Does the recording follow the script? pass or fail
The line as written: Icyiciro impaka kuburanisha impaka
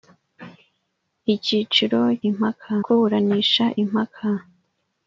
pass